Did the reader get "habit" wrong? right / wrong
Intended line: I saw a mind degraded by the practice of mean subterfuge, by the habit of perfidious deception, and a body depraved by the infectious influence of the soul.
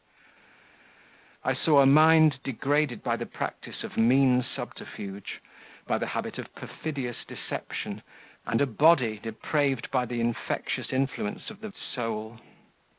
right